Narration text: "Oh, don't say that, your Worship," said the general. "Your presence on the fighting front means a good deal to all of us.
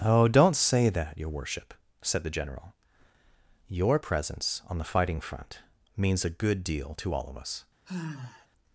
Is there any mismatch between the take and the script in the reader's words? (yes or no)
no